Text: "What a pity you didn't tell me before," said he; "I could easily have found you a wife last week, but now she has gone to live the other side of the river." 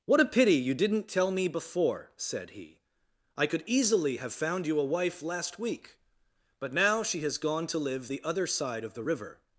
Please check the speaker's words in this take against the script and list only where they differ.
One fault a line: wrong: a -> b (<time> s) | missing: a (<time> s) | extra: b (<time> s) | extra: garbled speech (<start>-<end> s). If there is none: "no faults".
no faults